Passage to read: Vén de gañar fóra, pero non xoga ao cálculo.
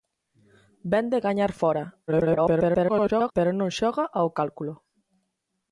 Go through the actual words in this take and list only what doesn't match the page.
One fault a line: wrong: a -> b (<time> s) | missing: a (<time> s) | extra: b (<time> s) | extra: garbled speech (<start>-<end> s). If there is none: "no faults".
extra: garbled speech (2.1-3.3 s)